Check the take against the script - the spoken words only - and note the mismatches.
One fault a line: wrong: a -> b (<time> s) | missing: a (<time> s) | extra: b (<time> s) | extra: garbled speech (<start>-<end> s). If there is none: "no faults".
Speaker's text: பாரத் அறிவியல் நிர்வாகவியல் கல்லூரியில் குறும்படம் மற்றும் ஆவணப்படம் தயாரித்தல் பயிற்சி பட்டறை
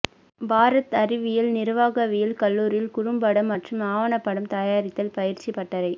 no faults